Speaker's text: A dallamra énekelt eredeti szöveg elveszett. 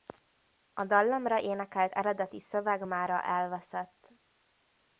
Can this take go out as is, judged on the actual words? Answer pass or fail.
fail